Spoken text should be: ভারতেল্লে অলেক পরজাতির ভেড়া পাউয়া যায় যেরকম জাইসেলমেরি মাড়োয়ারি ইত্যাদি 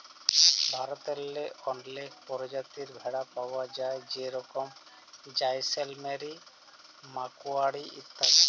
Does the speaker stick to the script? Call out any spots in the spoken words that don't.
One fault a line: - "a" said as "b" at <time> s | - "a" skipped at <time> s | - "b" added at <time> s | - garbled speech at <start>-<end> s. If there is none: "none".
none